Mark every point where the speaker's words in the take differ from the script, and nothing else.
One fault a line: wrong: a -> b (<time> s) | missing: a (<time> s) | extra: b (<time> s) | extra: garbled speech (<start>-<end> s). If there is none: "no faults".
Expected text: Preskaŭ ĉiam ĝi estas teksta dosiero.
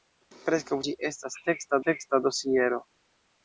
missing: ĉiam (0.8 s)
extra: teksta (1.9 s)